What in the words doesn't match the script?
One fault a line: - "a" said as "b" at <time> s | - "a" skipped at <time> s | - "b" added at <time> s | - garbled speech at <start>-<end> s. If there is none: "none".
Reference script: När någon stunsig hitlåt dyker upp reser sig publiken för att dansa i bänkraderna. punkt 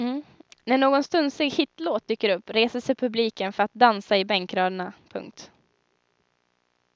none